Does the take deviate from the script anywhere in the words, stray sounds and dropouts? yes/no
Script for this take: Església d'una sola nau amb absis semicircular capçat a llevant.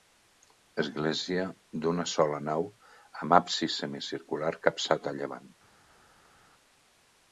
no